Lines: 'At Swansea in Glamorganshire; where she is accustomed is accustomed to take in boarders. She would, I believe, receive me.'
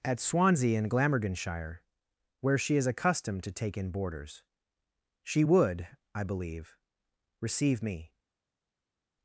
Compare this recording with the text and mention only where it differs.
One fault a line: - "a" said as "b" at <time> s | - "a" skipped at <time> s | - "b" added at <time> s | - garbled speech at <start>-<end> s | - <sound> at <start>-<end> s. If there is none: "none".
- "is accustomed" skipped at 3.4 s